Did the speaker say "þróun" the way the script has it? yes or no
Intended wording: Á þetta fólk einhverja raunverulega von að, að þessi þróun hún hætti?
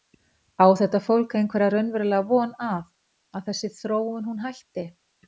yes